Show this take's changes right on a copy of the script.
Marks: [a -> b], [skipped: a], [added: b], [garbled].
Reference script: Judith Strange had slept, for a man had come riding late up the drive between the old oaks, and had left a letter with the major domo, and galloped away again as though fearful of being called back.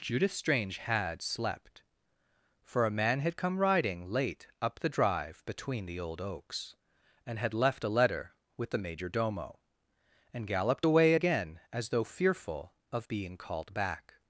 Judith Strange had slept, for a man had come riding late up the drive between the old oaks, and had left a letter with the major domo, and galloped away again as though fearful of being called back.